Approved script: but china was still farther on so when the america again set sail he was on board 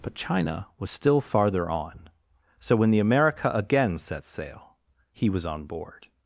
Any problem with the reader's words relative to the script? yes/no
no